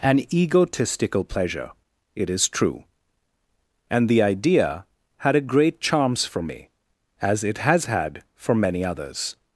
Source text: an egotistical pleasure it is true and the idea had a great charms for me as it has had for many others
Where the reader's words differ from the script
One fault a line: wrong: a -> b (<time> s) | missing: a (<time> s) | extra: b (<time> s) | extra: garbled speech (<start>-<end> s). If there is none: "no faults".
no faults